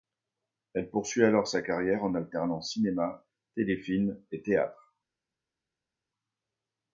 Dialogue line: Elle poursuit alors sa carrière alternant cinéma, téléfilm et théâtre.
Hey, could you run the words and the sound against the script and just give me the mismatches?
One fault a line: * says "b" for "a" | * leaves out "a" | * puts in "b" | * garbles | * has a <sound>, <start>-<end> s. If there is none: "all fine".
* puts in "en"